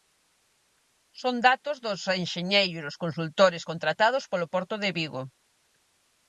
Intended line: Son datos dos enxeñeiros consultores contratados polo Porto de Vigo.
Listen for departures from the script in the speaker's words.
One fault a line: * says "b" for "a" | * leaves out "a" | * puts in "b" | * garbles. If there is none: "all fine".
all fine